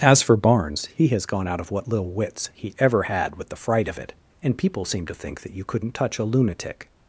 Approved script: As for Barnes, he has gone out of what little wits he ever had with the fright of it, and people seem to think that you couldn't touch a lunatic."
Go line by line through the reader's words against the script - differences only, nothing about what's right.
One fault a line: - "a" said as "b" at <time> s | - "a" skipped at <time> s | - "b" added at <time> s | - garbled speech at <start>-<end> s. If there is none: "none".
none